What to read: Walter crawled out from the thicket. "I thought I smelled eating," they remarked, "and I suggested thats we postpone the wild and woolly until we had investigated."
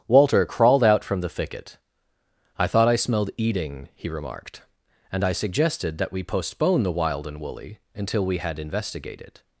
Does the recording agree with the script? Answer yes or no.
no